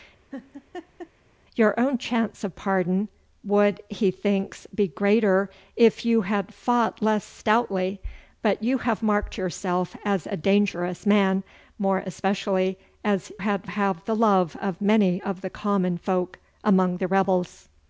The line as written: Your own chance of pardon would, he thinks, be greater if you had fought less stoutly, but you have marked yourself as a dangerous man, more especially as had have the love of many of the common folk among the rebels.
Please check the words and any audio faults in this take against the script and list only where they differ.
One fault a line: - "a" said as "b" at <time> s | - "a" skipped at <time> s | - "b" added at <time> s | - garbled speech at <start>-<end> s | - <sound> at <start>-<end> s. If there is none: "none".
- laugh at 0.3-1.1 s